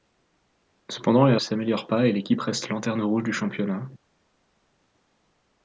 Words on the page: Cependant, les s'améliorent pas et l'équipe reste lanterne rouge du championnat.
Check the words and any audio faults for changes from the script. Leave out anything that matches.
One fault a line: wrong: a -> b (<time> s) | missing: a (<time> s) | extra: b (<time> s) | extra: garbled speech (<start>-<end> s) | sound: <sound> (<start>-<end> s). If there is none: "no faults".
no faults